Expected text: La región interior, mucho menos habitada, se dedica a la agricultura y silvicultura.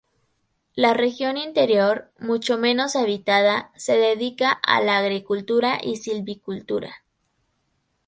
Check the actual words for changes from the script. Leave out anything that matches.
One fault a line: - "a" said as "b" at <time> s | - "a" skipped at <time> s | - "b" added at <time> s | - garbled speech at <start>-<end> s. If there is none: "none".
none